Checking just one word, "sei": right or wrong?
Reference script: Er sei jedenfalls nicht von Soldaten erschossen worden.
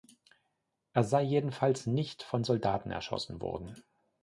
right